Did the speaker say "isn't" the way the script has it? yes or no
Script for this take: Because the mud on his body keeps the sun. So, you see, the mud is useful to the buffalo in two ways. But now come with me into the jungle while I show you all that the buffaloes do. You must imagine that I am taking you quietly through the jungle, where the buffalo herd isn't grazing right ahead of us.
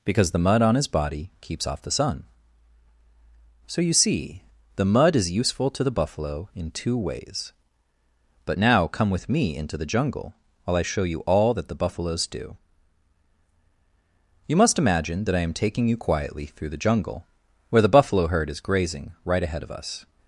no